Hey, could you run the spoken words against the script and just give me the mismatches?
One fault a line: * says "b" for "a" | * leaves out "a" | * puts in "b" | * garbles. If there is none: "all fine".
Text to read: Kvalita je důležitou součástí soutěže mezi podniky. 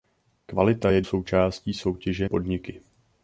* leaves out "důležitou"
* leaves out "mezi"